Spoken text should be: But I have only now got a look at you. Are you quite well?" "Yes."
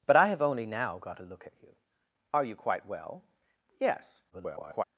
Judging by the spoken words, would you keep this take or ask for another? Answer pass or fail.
fail